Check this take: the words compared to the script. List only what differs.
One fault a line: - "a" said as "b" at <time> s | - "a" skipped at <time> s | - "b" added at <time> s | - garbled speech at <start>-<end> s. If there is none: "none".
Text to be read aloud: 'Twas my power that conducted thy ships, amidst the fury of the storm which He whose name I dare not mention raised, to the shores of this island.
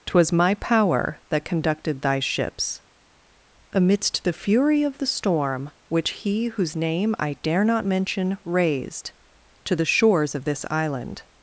none